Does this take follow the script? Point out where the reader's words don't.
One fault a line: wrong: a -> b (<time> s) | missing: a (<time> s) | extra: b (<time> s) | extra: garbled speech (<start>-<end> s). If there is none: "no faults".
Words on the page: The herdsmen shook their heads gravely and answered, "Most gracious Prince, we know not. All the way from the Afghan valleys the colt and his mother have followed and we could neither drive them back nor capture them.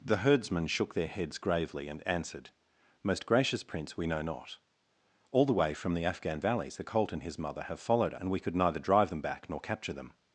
no faults